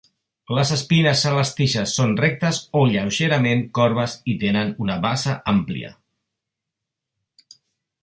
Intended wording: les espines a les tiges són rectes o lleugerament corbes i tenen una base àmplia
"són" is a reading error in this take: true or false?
false